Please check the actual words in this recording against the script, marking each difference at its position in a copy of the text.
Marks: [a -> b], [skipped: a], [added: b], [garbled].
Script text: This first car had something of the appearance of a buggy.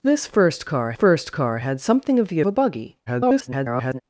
This first car [added: first car] had something of the [skipped: appearance of] a buggy. [garbled]